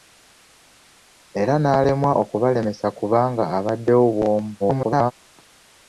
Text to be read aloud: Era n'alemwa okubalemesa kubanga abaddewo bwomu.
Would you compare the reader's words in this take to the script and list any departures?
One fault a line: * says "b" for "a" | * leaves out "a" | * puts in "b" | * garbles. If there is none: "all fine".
* garbles